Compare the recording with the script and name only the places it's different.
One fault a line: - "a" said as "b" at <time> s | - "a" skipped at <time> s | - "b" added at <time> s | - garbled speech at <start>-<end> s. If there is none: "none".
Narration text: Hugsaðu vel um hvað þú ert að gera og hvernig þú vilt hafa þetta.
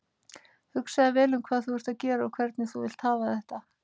none